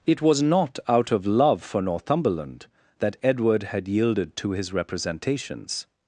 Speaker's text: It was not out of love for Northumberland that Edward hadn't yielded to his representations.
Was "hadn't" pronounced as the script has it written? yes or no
no